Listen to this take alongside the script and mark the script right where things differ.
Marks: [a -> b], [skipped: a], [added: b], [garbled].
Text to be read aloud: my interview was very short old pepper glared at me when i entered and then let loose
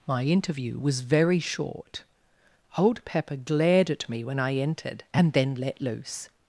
my interview was very short old pepper glared at me when i entered and then let loose